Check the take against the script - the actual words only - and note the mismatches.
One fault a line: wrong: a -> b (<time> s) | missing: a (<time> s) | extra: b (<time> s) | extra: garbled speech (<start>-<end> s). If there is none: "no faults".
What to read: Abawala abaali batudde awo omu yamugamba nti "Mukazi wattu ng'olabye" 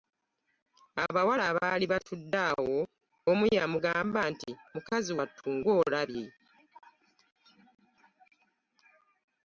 no faults